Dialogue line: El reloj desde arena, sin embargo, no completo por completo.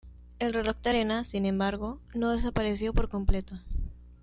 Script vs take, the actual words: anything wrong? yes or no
yes